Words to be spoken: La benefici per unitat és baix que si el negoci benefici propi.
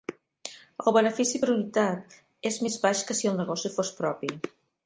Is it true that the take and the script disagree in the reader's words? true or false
true